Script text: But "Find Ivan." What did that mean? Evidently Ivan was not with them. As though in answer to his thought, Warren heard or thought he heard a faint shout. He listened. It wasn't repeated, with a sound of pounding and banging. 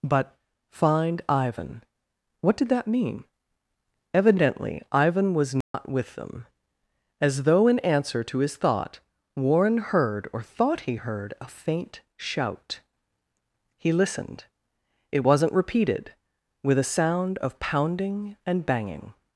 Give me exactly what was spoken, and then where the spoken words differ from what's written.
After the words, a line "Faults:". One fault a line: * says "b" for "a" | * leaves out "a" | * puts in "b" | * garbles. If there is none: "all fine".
But "Find Ivan." What did that mean? Evidently Ivan was not with them. As though in answer to his thought, Warren heard or thought he heard a faint shout. He listened. It wasn't repeated, with a sound of pounding and banging.
Faults:
all fine